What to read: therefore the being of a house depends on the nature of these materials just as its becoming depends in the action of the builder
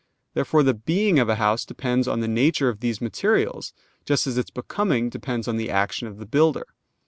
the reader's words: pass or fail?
fail